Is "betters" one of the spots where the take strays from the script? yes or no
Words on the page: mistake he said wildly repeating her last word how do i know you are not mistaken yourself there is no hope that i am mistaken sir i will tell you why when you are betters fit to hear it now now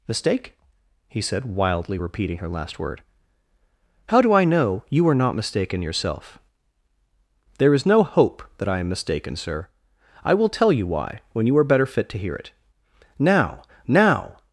yes